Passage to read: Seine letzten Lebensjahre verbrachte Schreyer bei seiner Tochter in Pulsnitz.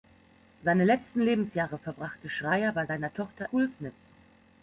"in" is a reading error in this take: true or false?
true